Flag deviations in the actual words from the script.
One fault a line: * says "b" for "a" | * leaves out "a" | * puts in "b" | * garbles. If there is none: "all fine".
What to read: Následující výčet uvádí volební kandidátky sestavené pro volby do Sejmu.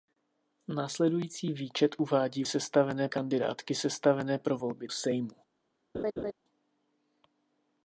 * says "sestavené" for "volební"
* leaves out "do"